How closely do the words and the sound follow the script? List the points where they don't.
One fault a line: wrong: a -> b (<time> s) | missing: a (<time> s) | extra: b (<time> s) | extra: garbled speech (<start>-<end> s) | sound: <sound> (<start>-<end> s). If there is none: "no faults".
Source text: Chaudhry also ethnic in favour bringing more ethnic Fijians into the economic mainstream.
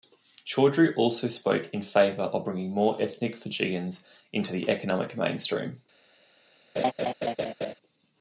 wrong: ethnic -> spoke (1.3 s)
extra: of (2.2 s)
sound: laugh (6.8-7.7 s)